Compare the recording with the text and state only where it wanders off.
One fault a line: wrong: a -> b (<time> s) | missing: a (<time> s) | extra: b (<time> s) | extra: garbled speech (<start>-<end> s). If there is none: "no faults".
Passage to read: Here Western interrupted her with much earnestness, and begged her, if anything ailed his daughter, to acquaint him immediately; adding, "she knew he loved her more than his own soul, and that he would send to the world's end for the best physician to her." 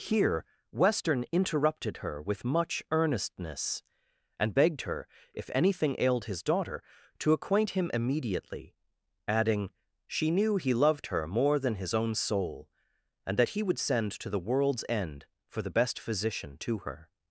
no faults